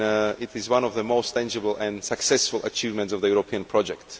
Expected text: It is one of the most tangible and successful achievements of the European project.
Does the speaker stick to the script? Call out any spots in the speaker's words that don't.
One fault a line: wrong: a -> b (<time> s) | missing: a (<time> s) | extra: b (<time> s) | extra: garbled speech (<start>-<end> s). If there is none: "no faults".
no faults